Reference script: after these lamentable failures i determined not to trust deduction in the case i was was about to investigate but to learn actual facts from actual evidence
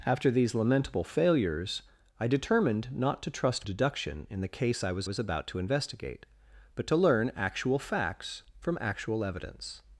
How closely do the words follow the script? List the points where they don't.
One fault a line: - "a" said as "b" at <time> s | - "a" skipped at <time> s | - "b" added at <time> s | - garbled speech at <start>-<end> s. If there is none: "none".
none